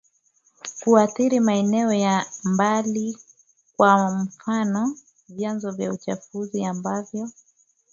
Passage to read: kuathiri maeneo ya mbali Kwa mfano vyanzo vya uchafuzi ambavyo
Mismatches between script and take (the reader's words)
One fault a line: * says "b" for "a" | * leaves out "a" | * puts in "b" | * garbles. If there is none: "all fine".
all fine